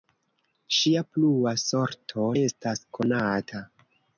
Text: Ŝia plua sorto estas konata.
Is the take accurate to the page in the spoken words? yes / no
yes